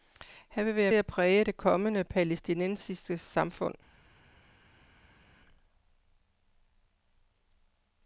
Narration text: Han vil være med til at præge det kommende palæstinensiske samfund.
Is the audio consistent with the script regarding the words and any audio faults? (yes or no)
no